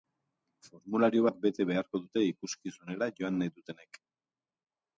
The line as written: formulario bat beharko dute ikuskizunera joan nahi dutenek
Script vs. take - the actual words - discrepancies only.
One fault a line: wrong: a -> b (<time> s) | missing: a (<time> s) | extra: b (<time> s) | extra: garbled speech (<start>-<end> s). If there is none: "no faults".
extra: bete (1.5 s)